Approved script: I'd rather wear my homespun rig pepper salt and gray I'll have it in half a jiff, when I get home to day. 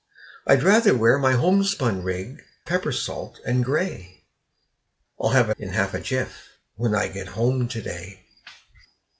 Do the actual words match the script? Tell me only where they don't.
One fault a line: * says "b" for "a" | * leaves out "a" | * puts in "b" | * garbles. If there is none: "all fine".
all fine